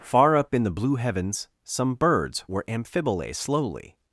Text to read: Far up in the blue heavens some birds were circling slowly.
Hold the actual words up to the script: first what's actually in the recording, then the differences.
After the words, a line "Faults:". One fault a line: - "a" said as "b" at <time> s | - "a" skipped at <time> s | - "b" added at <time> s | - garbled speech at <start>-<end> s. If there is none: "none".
Far up in the blue heavens some birds were amphibole slowly.
Faults:
- "circling" said as "amphibole" at 2.7 s